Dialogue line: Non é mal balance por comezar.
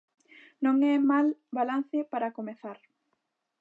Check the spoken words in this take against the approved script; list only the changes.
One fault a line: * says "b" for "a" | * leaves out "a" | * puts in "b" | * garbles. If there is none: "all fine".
* says "para" for "por"